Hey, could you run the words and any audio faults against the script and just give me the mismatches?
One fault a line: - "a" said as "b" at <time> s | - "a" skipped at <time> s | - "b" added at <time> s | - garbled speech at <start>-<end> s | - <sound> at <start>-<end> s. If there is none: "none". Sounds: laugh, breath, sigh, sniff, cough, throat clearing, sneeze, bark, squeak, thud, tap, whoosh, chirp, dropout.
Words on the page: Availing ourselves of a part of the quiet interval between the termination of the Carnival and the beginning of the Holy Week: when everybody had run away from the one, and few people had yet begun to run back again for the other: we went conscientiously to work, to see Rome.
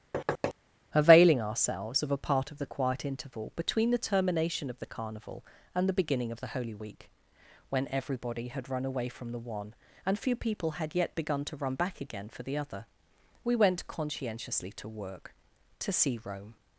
- thud at 0.1-0.5 s